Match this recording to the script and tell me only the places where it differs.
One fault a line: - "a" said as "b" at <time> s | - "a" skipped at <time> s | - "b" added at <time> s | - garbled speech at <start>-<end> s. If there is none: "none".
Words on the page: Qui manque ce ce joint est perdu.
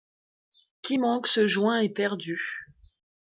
- "ce" skipped at 1.5 s